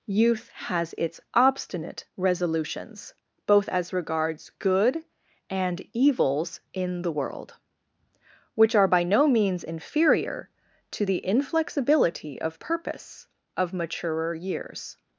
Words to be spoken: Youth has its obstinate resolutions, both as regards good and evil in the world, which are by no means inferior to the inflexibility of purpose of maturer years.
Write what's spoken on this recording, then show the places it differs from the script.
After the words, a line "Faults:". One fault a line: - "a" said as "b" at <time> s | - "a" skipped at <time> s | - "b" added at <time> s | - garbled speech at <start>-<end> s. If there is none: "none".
Youth has its obstinate resolutions, both as regards good and evils in the world, which are by no means inferior to the inflexibility of purpose of maturer years.
Faults:
- "evil" said as "evils" at 5.9 s